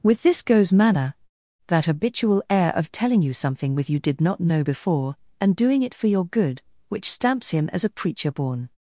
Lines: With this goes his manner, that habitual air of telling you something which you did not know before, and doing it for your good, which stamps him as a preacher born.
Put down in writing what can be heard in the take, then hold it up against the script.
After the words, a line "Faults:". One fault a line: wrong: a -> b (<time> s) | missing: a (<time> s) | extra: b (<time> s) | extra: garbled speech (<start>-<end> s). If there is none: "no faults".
With this goes manner, that habitual air of telling you something with you did not know before, and doing it for your good, which stamps him as a preacher born.
Faults:
missing: his (0.7 s)
wrong: which -> with (3.8 s)